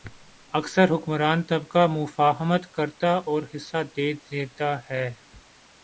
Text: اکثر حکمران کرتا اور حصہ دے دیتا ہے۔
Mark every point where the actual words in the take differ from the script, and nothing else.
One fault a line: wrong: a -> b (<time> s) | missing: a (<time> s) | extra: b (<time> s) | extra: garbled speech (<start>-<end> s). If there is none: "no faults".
extra: طبقہ مفاہمت (1.4 s)